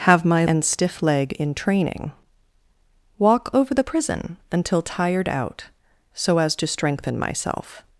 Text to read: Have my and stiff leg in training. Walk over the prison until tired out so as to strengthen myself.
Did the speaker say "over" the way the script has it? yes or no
yes